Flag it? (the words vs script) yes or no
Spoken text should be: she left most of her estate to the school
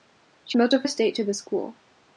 yes